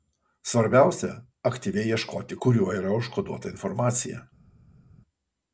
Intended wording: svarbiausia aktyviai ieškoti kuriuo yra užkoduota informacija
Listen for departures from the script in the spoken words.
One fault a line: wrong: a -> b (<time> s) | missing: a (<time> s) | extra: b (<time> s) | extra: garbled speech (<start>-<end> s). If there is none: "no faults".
no faults